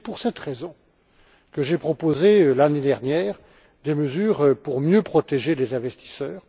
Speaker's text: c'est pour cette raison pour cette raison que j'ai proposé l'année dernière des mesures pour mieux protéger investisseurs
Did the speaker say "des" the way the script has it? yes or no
yes